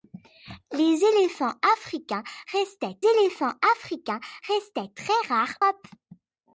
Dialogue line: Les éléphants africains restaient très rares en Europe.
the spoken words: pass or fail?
fail